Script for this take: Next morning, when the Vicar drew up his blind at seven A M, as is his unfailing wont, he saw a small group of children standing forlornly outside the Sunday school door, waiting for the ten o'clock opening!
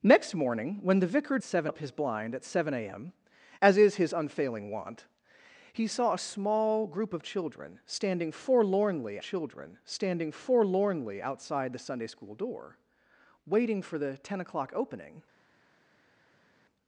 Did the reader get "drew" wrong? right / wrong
wrong